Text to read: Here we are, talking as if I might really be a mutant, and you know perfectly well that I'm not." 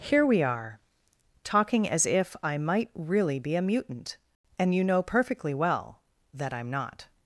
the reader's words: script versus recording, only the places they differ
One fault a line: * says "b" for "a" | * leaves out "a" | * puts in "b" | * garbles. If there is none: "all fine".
all fine